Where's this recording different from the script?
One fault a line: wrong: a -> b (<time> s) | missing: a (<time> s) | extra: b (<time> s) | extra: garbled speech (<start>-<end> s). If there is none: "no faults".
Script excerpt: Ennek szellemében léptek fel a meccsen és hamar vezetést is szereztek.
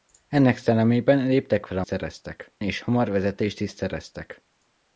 wrong: meccsen -> szereztek (1.8 s)